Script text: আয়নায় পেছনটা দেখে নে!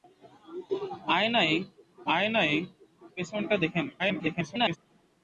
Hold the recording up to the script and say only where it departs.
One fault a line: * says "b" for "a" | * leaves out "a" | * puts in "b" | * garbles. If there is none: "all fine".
* puts in "আয়নায়"
* garbles